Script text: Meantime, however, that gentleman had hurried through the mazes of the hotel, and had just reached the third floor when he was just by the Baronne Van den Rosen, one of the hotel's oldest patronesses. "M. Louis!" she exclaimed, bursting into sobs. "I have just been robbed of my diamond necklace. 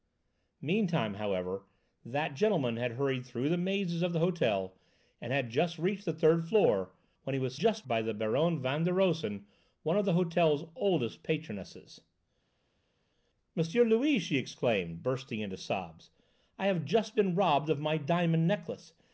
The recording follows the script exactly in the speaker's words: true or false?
true